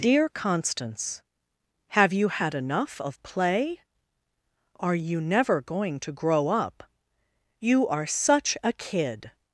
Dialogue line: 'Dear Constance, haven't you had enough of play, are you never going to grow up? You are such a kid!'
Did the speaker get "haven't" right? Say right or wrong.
wrong